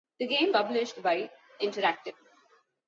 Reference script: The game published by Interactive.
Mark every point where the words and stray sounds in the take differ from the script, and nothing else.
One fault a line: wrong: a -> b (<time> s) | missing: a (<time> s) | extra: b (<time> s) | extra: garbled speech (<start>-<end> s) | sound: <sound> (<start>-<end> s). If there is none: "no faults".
no faults